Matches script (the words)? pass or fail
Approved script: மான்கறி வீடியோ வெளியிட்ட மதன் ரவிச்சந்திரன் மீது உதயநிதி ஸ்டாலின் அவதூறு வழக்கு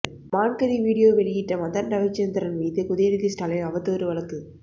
pass